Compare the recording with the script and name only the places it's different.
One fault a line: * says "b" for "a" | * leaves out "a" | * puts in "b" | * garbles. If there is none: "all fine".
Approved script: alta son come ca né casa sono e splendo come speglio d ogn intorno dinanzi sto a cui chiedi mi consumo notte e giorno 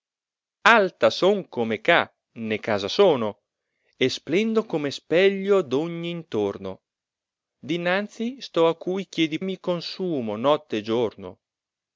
all fine